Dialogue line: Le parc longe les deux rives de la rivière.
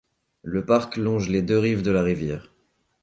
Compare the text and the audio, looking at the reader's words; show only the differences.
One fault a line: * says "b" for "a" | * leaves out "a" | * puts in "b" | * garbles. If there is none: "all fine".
all fine